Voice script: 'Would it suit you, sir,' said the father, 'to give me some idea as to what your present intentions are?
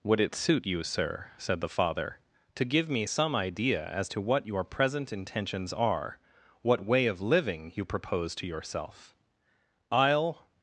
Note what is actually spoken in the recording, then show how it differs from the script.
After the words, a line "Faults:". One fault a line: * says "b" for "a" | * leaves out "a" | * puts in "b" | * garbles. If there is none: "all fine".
'Would it suit you, sir,' said the father, 'to give me some idea as to what your present intentions are? what way of living you propose to yourself?' 'I'll
Faults:
* puts in "what way of living you propose to yourself I'll"